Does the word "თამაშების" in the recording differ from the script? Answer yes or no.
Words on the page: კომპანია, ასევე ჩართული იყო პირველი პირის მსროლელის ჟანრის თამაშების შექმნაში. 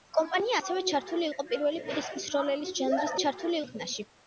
yes